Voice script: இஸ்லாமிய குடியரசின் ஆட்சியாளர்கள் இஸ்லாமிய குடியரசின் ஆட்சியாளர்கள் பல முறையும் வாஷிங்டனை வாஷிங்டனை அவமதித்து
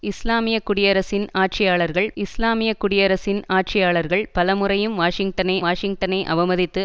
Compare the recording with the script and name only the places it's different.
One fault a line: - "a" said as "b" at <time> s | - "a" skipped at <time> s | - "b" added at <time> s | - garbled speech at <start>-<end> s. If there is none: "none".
none